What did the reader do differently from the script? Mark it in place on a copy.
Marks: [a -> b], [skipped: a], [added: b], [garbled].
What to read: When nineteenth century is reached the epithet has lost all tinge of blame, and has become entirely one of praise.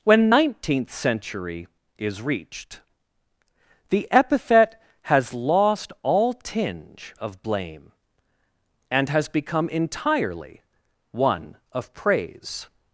When nineteenth century is reached the epithet has lost all tinge of blame, and has become entirely one of praise.